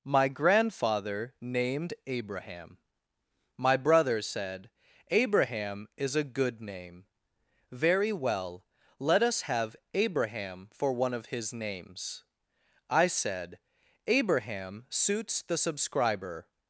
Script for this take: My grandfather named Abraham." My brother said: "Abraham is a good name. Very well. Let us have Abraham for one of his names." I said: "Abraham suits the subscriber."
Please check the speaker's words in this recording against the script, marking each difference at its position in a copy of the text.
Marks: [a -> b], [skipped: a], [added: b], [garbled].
My grandfather named Abraham." My brother said: "Abraham is a good name. Very well. Let us have Abraham for one of his names." I said: "Abraham suits the subscriber."